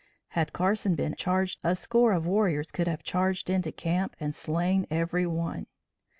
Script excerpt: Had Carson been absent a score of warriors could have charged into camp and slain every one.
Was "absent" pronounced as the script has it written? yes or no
no